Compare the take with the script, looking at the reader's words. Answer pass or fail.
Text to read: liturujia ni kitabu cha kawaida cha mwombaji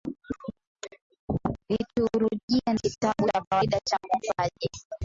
pass